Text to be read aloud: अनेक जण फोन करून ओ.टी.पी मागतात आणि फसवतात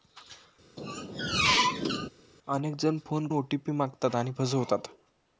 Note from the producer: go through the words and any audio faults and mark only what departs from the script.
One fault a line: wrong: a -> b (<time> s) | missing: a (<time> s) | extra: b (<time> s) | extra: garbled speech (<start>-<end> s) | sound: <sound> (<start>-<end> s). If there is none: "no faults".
sound: squeak (0.8-2.1 s)
missing: करून (3.3 s)